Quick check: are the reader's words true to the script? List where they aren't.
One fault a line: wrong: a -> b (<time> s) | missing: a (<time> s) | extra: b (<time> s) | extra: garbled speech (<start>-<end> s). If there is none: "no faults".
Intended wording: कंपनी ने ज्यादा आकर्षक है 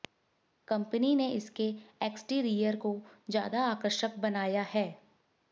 extra: इसके एक्सटीरियर को (1.3 s)
extra: बनाया (4.2 s)